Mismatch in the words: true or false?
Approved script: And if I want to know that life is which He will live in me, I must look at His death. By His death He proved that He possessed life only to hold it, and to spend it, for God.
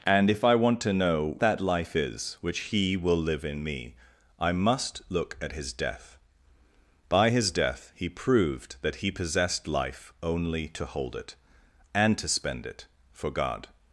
false